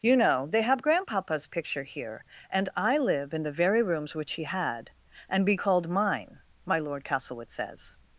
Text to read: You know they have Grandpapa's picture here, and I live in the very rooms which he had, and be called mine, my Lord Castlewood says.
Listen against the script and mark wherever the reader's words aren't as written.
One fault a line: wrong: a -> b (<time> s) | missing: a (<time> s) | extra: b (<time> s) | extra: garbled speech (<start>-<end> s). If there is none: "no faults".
no faults